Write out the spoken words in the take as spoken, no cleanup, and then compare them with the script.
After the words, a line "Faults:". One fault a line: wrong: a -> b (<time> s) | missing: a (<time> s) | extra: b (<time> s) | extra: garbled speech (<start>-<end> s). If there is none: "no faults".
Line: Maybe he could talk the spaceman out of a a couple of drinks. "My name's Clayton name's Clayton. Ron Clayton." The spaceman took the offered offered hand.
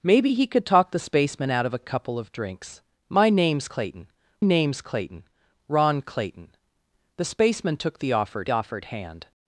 Maybe he could talk the spaceman out of a a couple of drinks. "My name's Clayton name's Clayton. Ron Clayton." The spaceman took the offered offered hand.
Faults:
no faults